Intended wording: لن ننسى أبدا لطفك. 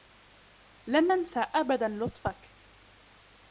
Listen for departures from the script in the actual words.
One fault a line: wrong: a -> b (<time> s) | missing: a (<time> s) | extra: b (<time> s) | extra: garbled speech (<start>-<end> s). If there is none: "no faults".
no faults